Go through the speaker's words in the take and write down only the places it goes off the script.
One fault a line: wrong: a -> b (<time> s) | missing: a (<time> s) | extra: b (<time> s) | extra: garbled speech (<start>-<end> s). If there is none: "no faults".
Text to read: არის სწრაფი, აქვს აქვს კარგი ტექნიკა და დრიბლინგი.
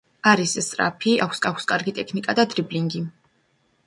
no faults